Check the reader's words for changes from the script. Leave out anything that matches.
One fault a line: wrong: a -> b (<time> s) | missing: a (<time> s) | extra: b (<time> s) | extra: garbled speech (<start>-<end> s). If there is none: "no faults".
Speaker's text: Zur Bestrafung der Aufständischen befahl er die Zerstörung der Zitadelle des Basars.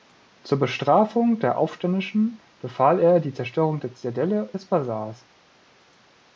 no faults